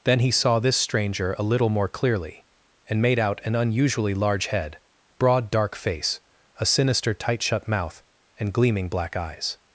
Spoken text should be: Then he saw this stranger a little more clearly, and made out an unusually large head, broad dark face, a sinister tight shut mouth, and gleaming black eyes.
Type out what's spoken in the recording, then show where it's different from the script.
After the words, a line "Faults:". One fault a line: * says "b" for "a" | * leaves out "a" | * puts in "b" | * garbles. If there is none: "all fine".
Then he saw this stranger a little more clearly, and made out an unusually large head, broad dark face, a sinister tight shut mouth, and gleaming black eyes.
Faults:
all fine